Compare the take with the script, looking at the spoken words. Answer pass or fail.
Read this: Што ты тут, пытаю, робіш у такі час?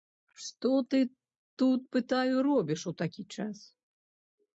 pass